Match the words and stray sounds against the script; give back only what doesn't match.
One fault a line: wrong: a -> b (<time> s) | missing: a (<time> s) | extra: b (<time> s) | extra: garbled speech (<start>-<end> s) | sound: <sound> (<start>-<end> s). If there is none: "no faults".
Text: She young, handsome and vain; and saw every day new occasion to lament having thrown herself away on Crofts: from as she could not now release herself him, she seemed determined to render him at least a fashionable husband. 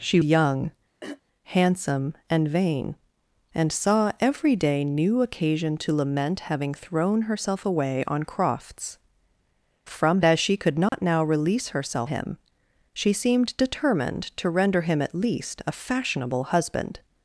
sound: throat clearing (1.0-1.2 s)
sound: dropout (10.9-10.9 s)